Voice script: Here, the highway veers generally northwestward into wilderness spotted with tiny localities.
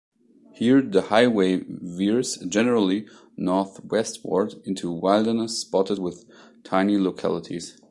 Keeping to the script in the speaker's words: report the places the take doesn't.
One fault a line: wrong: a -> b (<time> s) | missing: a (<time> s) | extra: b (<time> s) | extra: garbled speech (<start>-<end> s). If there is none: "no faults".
no faults